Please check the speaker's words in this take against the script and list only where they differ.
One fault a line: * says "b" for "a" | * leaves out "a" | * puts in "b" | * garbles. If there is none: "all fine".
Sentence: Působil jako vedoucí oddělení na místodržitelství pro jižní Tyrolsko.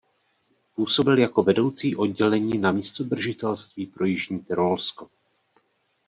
all fine